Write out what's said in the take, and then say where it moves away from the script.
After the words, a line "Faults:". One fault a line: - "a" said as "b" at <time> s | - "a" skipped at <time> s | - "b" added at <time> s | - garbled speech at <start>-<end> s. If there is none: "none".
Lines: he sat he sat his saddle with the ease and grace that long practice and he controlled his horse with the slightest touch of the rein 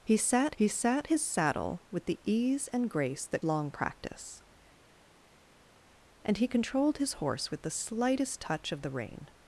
he sat he sat his saddle with the ease and grace that long practice and he controlled his horse with the slightest touch of the rein
Faults:
none